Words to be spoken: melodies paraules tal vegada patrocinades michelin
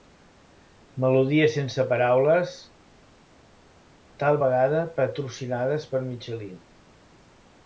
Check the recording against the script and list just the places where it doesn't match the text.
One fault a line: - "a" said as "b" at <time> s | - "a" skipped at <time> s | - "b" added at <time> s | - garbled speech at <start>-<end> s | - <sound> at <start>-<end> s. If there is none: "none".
- "sense" added at 1.6 s
- "per" added at 5.9 s